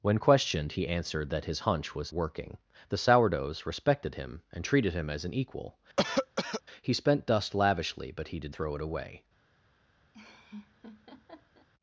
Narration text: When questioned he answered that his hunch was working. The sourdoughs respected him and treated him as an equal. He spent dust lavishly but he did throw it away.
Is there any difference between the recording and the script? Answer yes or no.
no